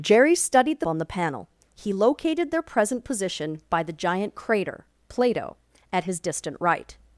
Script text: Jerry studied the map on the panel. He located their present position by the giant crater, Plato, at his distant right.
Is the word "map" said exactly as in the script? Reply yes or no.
no